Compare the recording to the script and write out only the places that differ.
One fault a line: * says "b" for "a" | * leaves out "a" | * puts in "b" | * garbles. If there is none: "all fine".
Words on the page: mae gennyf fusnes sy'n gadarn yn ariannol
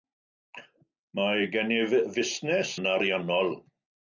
* leaves out "sy'n gadarn"